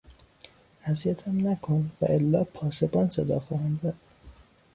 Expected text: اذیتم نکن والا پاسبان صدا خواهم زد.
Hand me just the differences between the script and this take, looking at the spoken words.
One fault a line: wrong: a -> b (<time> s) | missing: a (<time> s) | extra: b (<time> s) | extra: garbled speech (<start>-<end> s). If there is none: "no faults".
no faults